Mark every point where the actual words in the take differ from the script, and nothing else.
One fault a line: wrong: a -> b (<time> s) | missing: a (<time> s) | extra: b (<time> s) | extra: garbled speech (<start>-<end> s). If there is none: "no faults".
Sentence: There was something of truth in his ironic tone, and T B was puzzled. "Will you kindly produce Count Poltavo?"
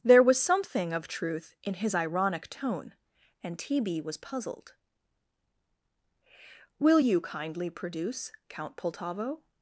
no faults